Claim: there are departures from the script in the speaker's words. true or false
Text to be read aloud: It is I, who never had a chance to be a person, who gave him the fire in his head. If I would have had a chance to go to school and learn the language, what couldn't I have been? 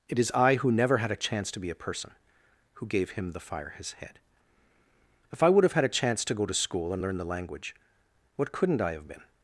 true